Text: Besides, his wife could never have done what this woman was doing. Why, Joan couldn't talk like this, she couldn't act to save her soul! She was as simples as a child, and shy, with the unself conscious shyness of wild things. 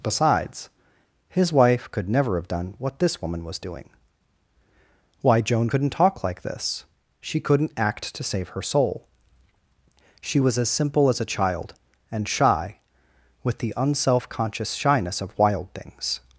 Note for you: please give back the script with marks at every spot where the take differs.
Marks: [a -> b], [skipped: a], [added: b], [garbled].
Besides, his wife could never have done what this woman was doing. Why, Joan couldn't talk like this, she couldn't act to save her soul! She was as [simples -> simple] as a child, and shy, with the unself conscious shyness of wild things.